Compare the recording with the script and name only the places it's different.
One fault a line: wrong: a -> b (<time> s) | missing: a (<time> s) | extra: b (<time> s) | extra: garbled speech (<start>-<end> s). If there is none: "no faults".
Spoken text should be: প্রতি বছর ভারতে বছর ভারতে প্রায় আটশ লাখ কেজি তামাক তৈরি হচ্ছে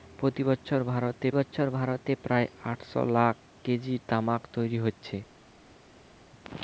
no faults